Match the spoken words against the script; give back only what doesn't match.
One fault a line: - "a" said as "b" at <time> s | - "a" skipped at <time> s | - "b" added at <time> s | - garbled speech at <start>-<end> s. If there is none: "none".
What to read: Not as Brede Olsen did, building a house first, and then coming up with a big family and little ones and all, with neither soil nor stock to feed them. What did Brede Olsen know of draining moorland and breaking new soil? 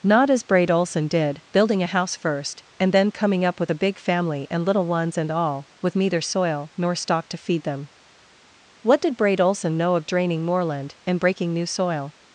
none